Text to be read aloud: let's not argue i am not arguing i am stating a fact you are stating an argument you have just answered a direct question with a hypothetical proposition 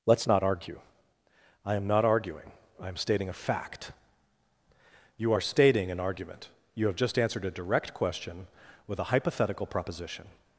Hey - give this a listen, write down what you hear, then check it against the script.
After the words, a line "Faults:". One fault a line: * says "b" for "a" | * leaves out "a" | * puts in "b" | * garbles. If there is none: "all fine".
let's not argue i am not arguing i am stating a fact you are stating an argument you have just answered a direct question with a hypothetical proposition
Faults:
all fine